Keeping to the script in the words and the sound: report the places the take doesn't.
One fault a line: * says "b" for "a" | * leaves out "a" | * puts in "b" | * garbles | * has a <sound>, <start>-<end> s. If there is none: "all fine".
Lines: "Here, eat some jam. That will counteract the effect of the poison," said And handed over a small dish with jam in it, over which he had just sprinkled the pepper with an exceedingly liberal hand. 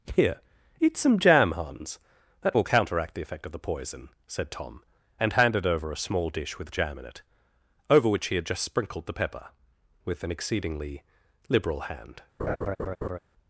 * puts in "Hans"
* puts in "Tom"
* has a laugh, 12.4-13.2 s